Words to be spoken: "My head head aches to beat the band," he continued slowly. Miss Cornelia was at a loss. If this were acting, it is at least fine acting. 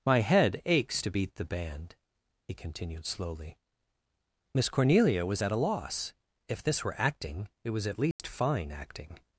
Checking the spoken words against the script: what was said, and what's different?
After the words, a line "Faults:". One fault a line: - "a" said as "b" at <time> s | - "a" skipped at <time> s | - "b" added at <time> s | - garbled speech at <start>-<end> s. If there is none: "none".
"My head aches to beat the band," he continued slowly. Miss Cornelia was at a loss. If this were acting, it was at least fine acting.
Faults:
- "head" skipped at 0.6 s
- "is" said as "was" at 7.7 s